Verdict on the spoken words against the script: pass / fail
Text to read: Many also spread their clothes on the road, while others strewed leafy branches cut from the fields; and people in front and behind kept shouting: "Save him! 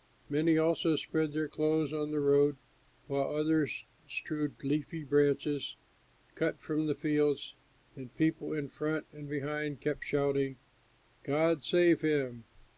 fail